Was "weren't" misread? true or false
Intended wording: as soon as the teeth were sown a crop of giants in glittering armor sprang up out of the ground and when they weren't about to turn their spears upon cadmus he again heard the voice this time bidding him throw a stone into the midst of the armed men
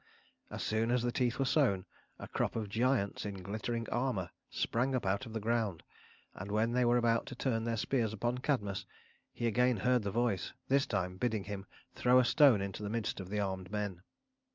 true